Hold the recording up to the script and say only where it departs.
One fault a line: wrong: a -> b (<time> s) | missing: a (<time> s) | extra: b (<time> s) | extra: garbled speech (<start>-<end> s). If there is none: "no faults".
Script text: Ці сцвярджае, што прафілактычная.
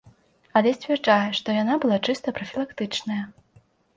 wrong: Ці -> Але (0.6 s)
extra: яна была чыста (1.6 s)